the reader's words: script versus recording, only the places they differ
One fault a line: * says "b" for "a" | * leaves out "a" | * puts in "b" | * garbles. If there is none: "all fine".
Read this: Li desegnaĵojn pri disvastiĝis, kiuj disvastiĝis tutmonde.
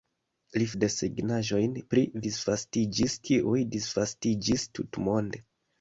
all fine